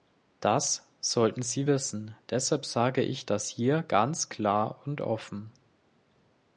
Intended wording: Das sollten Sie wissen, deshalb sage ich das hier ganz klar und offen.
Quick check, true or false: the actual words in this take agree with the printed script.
true